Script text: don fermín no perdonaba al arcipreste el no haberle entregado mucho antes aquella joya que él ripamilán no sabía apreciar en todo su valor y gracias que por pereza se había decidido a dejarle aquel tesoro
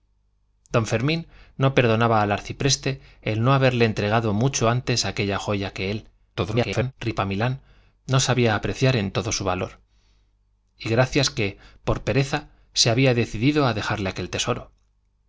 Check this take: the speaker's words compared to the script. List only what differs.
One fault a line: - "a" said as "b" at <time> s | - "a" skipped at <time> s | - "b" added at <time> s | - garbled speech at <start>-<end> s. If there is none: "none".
- garbled speech at 6.3-6.9 s